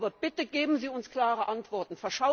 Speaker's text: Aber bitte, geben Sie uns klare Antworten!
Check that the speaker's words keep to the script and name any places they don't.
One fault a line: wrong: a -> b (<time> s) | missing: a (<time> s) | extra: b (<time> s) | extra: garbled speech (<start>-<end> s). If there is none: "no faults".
no faults